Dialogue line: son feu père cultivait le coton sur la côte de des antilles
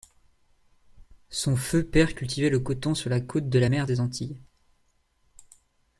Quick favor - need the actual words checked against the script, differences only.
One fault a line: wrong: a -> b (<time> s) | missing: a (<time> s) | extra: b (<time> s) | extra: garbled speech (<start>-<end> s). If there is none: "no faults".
extra: la mer (3.6 s)